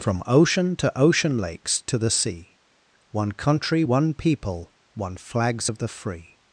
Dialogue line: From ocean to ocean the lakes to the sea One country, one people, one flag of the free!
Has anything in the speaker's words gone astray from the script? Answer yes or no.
yes